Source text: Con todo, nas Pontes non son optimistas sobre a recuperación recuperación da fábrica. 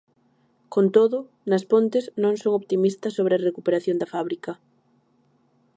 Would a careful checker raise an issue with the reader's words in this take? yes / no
yes